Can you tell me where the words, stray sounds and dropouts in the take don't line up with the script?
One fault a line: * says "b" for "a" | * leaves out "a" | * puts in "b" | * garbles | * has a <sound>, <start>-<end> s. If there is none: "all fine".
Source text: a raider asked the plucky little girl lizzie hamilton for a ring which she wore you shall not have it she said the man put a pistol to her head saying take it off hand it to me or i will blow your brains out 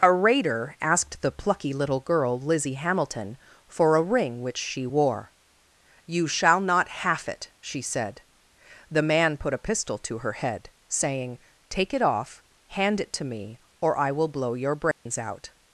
* says "half" for "have"
* has a dropout, 14.9-15.1 s